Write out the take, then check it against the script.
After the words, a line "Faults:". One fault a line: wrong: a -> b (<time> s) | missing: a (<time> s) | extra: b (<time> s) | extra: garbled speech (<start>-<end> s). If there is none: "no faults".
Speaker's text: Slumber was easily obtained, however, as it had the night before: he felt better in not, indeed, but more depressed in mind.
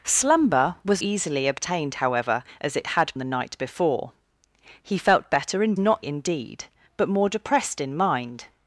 Slumber was easily obtained, however, as it had the night before: he felt better in not, indeed, but more depressed in mind.
Faults:
no faults